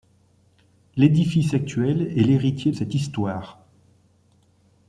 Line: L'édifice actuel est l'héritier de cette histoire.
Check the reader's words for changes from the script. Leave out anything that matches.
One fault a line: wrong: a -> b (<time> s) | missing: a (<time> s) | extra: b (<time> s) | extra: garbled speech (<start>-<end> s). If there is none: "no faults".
missing: de (2.7 s)